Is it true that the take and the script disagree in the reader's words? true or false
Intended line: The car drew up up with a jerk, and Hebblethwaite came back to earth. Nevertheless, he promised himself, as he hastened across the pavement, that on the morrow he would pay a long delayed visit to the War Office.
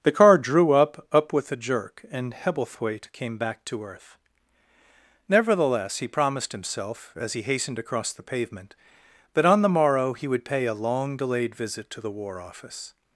false